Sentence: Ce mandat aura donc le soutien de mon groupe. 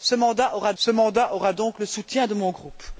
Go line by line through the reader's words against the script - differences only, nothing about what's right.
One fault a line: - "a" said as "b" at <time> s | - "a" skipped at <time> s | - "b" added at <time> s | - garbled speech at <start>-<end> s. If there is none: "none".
- "ce mandat aura" added at 0.8 s